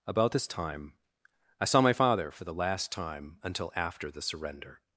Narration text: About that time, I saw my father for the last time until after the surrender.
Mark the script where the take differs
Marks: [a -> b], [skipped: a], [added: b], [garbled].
About [that -> this] time, I saw my father for the last time until after the surrender.